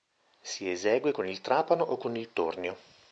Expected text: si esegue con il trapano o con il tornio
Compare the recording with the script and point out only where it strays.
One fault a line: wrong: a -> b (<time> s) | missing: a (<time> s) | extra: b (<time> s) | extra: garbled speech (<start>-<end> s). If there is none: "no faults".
no faults